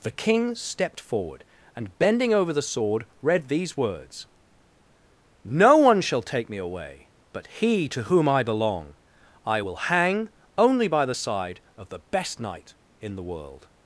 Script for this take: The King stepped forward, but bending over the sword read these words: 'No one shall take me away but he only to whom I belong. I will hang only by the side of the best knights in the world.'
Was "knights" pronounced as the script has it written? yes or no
no